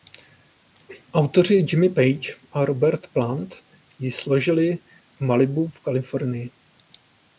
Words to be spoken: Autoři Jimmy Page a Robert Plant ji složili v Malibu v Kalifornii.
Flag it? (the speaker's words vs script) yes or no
no